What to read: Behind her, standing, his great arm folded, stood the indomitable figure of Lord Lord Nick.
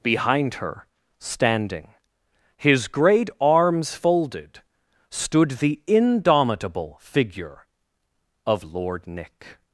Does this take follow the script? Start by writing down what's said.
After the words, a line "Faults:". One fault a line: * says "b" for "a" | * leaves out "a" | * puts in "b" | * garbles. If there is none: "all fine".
Behind her, standing, his great arms folded, stood the indomitable figure of Lord Nick.
Faults:
* says "arms" for "arm"
* leaves out "Lord"